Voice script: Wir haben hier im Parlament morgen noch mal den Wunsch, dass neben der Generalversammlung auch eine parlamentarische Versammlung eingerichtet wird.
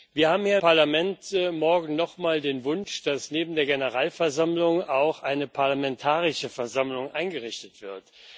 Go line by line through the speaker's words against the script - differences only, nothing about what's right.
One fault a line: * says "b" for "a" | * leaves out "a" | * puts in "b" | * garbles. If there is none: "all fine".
* leaves out "im"